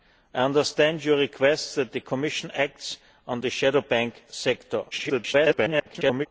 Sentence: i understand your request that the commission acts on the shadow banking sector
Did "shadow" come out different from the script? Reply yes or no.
no